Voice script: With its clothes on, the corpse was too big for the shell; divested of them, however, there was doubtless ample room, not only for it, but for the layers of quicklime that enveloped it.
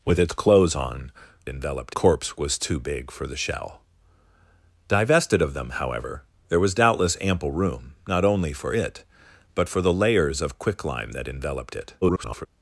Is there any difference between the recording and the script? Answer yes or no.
yes